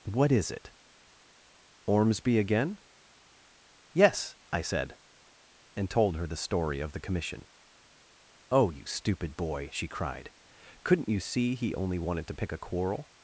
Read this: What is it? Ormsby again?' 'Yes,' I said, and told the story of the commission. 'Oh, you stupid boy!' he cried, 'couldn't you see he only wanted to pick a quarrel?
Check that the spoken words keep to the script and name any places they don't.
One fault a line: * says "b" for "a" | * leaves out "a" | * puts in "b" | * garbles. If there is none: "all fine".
* puts in "her"
* says "she" for "he"